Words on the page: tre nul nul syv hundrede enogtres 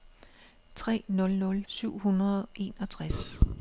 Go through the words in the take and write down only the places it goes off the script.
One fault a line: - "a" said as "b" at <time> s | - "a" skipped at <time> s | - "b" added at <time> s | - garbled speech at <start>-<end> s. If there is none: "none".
none